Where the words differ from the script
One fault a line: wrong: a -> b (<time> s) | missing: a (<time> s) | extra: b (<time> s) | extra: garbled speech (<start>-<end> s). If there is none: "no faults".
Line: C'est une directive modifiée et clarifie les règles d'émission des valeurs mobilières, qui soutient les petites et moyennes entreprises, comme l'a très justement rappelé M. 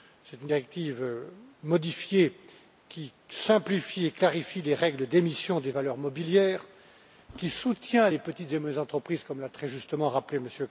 extra: qui simplifie (2.9 s)